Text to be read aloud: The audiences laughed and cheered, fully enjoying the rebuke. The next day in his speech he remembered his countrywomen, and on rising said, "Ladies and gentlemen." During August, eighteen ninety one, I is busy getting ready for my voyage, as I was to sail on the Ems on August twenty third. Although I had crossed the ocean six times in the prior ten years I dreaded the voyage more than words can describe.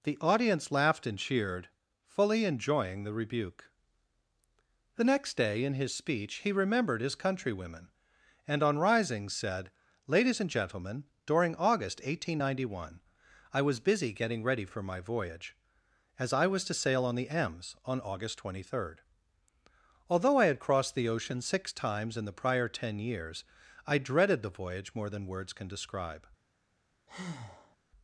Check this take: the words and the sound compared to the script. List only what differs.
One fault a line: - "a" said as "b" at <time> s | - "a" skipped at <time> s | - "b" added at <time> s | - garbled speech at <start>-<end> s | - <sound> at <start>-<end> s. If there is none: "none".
- "audiences" said as "audience" at 0.2 s
- "is" said as "was" at 13.6 s
- breath at 27.1-27.8 s